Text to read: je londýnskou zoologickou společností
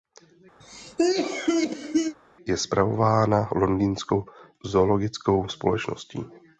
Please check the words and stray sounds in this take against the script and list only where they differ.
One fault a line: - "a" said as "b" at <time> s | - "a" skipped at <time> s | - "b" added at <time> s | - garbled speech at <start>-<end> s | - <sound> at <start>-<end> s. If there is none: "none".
- cough at 0.6-2.1 s
- "spravována" added at 2.6 s